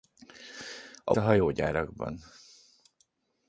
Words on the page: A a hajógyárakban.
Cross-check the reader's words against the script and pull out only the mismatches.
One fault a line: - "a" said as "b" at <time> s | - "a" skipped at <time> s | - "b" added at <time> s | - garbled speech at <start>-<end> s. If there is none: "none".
none